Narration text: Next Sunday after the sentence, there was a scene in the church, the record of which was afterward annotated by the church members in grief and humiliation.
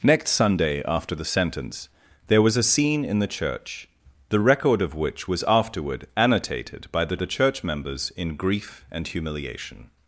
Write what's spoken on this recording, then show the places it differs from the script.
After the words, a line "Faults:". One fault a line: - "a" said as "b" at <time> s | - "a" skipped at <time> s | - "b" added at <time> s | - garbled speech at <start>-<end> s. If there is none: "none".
Next Sunday after the sentence, there was a scene in the church, the record of which was afterward annotated by the the church members in grief and humiliation.
Faults:
- "the" added at 7.1 s